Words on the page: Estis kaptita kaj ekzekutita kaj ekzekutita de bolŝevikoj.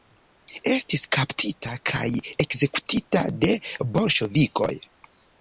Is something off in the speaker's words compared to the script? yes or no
yes